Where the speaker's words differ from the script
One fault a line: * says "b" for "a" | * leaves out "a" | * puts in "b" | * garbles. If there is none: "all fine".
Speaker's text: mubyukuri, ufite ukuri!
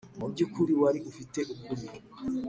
* puts in "wari"